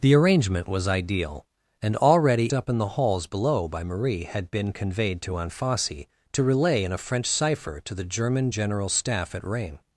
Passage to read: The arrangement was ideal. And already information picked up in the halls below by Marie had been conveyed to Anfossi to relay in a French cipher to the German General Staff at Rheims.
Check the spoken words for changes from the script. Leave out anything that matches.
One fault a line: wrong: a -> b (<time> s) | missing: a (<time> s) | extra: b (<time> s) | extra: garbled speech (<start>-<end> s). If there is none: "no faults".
missing: information picked (2.5 s)